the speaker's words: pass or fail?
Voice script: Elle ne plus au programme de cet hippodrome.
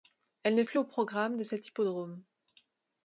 pass